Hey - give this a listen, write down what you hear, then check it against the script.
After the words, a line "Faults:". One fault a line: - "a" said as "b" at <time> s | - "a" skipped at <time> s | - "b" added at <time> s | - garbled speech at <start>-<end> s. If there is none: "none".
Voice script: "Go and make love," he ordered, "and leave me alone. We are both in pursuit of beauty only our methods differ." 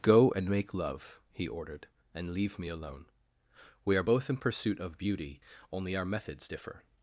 "Go and make love," he ordered, "and leave me alone. We are both in pursuit of beauty only our methods differ."
Faults:
none